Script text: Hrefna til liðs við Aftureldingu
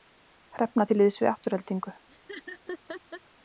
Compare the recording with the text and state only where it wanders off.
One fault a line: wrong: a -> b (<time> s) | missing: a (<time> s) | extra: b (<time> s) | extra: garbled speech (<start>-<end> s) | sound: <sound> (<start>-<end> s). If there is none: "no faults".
sound: laugh (2.1-3.2 s)